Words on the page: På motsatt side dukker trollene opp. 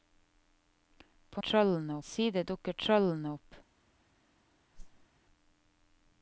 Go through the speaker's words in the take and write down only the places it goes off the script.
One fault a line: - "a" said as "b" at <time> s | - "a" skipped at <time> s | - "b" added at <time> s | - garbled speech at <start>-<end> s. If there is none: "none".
- "motsatt" said as "trollene" at 1.4 s